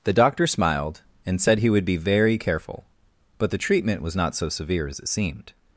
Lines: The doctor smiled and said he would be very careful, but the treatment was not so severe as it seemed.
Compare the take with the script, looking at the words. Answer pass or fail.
pass